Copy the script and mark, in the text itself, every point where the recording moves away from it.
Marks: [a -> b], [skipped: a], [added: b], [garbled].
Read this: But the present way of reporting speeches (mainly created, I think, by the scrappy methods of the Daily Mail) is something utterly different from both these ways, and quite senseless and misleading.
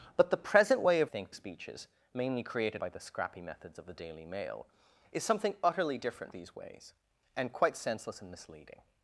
But the present way of [reporting -> think] speeches (mainly created, [skipped: I think,] by the scrappy methods of the Daily Mail) is something utterly different [skipped: from both] these ways, and quite senseless and misleading.